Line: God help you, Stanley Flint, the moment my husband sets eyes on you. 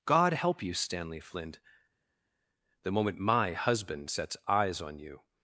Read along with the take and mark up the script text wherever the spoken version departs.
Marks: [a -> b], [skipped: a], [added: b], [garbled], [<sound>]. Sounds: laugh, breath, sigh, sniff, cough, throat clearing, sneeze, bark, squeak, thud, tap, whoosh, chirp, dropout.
God help you, Stanley Flint, the moment my husband sets eyes on you.